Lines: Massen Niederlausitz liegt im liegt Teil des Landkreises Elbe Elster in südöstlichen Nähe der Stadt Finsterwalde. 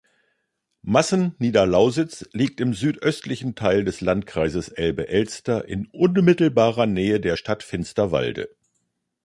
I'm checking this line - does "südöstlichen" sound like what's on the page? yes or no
no